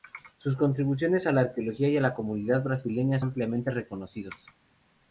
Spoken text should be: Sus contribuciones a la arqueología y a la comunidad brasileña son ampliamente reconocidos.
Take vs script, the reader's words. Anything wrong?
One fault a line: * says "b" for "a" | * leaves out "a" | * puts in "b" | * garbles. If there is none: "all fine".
* leaves out "son"